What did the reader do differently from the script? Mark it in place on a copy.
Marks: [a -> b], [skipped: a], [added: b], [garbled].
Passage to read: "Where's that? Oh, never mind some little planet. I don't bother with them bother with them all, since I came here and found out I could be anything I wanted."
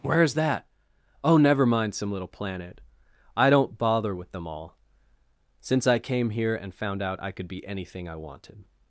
"Where's that? Oh, never mind some little planet. I don't bother with them [skipped: bother with them] all, since I came here and found out I could be anything I wanted."